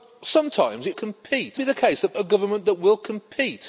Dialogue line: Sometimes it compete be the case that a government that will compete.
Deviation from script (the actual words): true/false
false